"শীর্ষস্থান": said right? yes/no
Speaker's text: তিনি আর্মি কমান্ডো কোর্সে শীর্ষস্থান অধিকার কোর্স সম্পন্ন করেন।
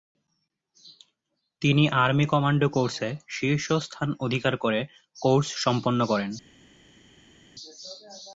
yes